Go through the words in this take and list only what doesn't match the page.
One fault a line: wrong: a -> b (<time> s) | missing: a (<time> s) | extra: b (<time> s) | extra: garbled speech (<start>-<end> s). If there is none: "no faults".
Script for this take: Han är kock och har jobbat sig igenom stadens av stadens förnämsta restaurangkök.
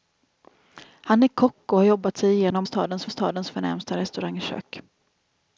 no faults